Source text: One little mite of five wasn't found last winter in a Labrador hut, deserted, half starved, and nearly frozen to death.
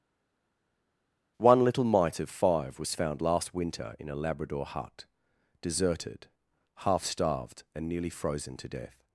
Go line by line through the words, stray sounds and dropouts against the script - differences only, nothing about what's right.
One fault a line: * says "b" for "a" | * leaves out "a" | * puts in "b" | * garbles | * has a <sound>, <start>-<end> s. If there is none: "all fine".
* says "was" for "wasn't"